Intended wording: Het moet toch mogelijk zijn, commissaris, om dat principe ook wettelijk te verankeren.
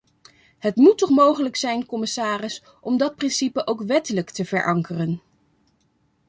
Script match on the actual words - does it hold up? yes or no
yes